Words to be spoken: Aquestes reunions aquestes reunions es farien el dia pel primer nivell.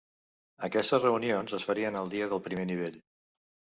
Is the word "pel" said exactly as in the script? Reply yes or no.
no